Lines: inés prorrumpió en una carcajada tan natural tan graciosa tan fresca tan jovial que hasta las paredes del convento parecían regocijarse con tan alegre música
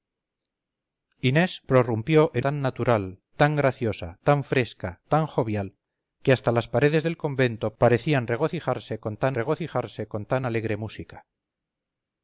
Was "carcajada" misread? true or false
true